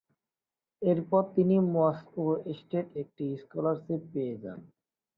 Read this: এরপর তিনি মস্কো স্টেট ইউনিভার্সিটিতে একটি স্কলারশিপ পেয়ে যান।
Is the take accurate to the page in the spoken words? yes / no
no